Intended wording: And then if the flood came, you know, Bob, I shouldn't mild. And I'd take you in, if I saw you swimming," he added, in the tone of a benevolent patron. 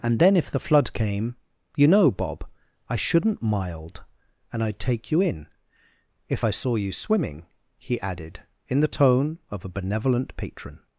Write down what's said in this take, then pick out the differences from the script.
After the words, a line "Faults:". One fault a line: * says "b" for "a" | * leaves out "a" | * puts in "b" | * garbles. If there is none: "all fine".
And then if the flood came, you know, Bob, I shouldn't mild. And I'd take you in, if I saw you swimming," he added, in the tone of a benevolent patron.
Faults:
all fine